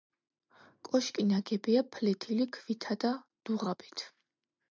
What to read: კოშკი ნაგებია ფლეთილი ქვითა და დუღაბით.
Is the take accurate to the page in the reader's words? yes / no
yes